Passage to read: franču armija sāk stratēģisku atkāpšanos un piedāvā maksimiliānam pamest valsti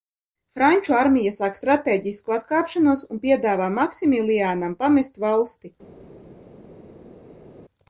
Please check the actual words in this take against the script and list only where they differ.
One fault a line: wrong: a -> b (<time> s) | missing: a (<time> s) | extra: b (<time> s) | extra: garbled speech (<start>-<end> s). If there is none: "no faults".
no faults